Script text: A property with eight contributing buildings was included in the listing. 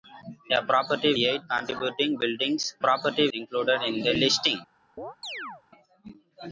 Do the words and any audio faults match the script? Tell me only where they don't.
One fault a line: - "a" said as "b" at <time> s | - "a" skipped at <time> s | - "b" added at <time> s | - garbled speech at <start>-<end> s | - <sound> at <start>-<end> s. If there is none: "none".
- "with" skipped at 1.1 s
- "was" said as "property" at 2.8 s
- chirp at 5.0-5.6 s